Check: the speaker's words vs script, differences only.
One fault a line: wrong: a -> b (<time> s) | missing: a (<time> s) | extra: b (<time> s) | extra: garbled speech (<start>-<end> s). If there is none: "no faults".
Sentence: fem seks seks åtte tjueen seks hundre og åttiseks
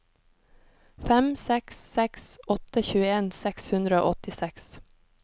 no faults